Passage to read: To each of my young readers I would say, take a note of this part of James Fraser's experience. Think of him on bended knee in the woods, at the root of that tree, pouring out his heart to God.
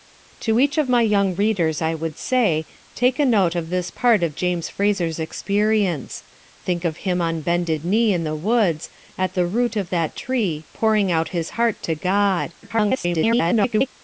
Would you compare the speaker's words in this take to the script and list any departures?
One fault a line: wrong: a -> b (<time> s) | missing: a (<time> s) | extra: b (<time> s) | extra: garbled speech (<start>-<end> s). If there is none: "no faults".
extra: garbled speech (12.6-13.9 s)